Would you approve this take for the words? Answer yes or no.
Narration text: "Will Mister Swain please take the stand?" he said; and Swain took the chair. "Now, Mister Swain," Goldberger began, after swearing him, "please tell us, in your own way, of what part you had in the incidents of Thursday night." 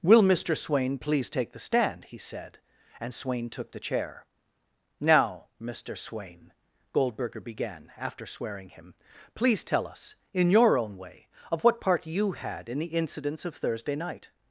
yes